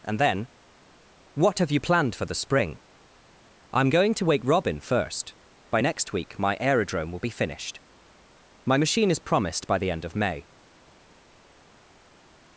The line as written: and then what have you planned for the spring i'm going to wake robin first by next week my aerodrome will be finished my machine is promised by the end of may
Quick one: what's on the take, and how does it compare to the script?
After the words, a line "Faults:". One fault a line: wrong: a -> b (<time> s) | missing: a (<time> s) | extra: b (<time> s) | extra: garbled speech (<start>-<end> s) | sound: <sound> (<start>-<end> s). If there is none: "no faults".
and then what have you planned for the spring i'm going to wake robin first by next week my aerodrome will be finished my machine is promised by the end of may
Faults:
no faults